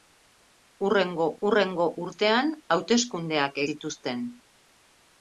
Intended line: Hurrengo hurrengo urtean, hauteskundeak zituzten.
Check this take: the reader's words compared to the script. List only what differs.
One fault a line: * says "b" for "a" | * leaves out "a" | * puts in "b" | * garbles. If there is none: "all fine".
all fine